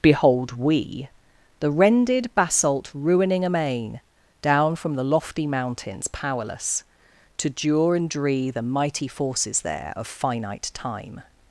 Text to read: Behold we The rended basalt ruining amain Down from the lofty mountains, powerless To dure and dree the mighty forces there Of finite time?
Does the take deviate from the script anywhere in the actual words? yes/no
no